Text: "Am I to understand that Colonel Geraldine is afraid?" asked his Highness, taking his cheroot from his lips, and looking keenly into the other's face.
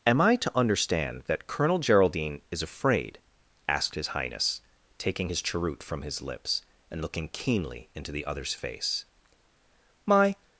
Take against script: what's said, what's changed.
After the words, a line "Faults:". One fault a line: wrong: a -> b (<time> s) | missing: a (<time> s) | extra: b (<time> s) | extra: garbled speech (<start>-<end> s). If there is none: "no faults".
"Am I to understand that Colonel Geraldine is afraid?" asked his Highness, taking his cheroot from his lips, and looking keenly into the other's face. "My
Faults:
extra: My (10.1 s)